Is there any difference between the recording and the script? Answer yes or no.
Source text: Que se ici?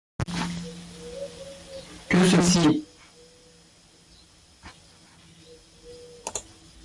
no